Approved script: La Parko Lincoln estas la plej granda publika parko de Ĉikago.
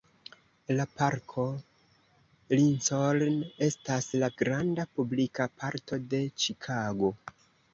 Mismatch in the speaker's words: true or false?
true